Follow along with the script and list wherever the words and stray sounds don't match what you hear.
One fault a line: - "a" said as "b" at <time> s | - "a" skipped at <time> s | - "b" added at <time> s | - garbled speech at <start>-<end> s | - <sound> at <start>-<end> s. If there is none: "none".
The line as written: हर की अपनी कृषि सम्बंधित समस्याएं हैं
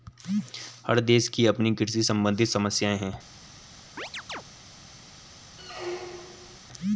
- "देश" added at 1.0 s
- chirp at 4.0-4.4 s
- squeak at 5.6-6.6 s